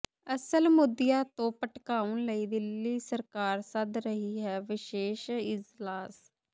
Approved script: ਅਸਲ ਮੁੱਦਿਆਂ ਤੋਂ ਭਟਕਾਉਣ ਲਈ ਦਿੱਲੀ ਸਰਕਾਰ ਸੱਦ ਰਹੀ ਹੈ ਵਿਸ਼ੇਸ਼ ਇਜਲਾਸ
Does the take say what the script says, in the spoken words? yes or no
yes